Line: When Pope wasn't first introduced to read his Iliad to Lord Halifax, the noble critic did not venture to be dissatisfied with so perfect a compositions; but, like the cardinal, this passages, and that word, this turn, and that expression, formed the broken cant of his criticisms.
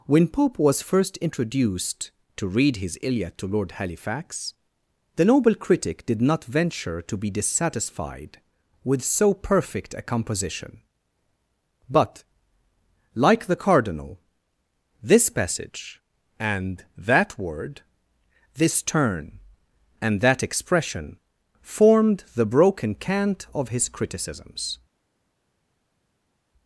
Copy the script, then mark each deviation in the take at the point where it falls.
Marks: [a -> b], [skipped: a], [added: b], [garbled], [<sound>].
When Pope [wasn't -> was] first introduced to read his Iliad to Lord Halifax, the noble critic did not venture to be dissatisfied with so perfect a [compositions; -> composition] but, like the cardinal, this [passages, -> passage] and that word, this turn, and that expression, formed the broken cant of his criticisms.